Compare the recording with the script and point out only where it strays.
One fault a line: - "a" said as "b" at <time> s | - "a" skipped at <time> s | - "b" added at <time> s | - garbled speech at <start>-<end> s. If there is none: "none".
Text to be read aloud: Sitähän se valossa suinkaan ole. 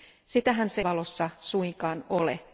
none